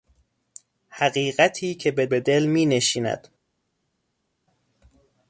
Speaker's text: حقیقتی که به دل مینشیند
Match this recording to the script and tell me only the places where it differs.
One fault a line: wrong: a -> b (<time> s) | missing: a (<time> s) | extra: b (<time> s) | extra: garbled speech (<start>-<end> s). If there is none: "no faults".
extra: به (2.0 s)